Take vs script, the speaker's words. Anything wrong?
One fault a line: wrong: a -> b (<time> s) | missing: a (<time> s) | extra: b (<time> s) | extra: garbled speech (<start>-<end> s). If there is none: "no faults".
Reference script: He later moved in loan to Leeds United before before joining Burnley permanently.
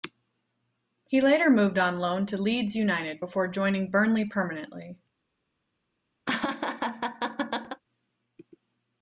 wrong: in -> on (1.8 s)
missing: before (3.5 s)